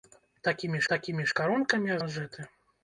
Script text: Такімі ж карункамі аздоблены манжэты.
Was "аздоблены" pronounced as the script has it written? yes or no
no